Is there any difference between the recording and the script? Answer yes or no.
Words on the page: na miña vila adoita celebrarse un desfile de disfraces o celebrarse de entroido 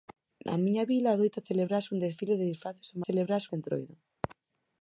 no